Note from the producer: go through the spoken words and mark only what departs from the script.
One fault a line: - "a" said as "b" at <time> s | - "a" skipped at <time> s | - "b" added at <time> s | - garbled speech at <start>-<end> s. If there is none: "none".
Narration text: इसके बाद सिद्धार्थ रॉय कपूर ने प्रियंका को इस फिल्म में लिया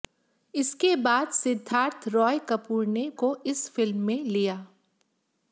- "प्रियंका" skipped at 3.1 s